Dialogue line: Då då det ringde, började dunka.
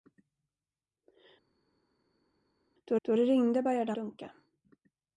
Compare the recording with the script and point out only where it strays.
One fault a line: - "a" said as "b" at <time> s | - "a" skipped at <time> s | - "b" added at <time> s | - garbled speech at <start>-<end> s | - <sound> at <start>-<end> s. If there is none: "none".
none